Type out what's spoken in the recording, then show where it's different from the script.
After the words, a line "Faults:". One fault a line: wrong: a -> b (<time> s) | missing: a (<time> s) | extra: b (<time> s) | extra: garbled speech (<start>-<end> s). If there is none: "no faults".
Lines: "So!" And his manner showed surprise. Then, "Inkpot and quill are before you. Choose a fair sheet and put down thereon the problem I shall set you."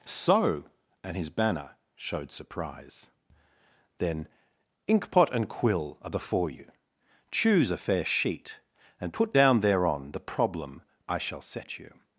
"So!" And his banner showed surprise. Then, "Inkpot and quill are before you. Choose a fair sheet and put down thereon the problem I shall set you."
Faults:
wrong: manner -> banner (1.3 s)